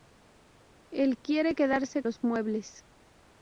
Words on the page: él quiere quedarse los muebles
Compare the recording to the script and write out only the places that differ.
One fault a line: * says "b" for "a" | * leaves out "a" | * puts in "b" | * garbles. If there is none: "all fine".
all fine